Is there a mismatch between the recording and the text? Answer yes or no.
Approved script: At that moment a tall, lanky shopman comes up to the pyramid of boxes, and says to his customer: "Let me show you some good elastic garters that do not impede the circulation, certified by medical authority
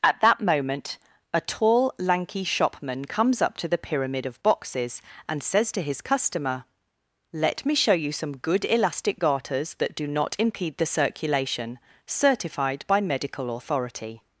no